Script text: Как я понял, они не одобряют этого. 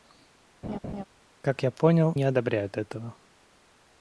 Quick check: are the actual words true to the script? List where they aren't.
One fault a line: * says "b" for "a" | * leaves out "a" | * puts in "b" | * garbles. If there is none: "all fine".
* leaves out "они"